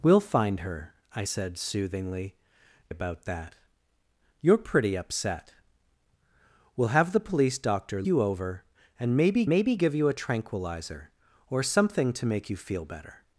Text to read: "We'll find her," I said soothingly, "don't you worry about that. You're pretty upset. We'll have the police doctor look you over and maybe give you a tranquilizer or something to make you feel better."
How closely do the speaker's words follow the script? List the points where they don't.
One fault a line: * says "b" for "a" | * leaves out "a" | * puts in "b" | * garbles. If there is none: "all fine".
* leaves out "don't you worry"
* leaves out "look"
* puts in "maybe"